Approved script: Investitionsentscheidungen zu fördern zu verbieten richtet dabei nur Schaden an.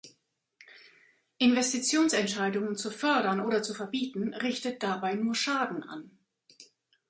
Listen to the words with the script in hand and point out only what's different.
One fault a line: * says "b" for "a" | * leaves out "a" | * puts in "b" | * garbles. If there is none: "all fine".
* puts in "oder"